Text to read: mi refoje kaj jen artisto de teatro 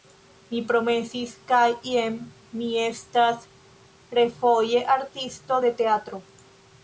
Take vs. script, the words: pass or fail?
fail